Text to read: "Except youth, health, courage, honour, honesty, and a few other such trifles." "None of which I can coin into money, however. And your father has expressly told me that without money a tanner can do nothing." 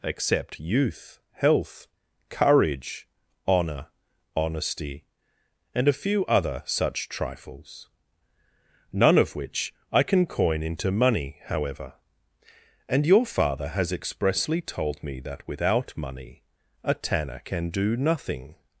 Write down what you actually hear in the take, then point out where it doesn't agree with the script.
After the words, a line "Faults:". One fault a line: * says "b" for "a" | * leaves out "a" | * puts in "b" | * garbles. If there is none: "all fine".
"Except youth, health, courage, honour, honesty, and a few other such trifles." "None of which I can coin into money, however. And your father has expressly told me that without money a tanner can do nothing."
Faults:
all fine